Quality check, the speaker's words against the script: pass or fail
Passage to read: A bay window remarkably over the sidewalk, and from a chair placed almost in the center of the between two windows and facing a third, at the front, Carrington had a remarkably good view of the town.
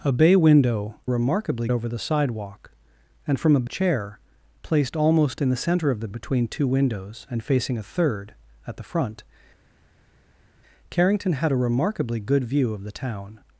pass